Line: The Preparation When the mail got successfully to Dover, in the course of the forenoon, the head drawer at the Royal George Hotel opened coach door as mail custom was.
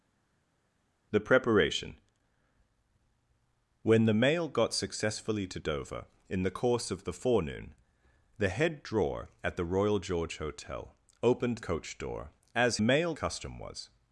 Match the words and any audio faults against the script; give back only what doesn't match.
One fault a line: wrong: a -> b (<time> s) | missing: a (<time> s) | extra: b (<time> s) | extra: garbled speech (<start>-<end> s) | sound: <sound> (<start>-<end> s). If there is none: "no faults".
no faults